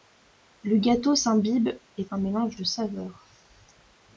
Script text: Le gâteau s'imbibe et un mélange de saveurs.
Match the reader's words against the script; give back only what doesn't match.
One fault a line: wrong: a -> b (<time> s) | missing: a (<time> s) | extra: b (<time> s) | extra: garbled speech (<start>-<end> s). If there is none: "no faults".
no faults